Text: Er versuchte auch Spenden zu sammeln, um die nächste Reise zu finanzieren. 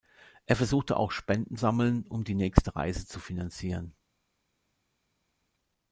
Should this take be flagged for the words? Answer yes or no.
yes